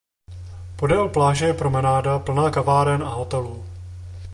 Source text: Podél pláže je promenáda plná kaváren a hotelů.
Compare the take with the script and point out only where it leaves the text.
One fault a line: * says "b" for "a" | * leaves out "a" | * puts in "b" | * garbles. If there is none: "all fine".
all fine